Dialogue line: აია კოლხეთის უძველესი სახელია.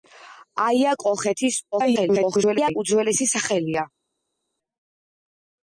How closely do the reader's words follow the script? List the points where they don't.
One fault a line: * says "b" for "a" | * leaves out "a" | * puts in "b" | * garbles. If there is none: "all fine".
* garbles